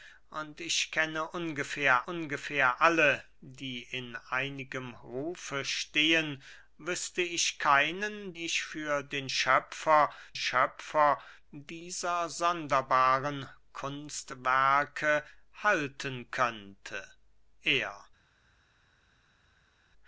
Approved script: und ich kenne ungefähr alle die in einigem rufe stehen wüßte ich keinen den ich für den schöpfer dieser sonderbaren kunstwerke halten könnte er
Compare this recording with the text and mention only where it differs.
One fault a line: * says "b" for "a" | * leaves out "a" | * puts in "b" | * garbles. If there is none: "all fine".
* puts in "ungefähr"
* leaves out "den"
* puts in "schöpfer"